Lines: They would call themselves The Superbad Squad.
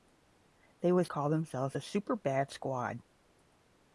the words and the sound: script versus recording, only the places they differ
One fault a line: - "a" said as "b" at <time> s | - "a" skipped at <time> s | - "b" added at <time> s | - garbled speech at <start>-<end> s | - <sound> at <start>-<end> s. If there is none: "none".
none